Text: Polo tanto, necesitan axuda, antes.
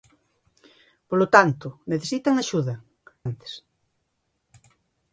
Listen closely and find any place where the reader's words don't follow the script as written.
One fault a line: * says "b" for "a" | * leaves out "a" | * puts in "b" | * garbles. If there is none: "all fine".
all fine